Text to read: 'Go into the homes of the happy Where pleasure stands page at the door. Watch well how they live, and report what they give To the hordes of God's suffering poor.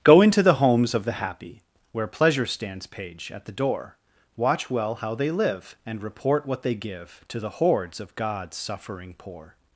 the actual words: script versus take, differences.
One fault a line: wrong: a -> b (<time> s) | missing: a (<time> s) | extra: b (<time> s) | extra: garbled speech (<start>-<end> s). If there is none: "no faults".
no faults